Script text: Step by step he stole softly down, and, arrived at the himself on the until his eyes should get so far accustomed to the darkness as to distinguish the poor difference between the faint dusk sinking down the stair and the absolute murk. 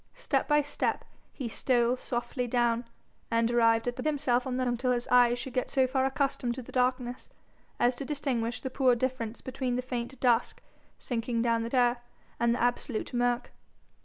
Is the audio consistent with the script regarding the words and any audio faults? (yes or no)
yes